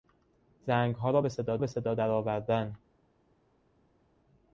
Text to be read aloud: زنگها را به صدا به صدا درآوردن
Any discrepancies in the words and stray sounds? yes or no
no